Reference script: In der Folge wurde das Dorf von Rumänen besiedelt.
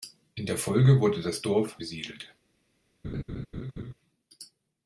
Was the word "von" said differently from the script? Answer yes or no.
yes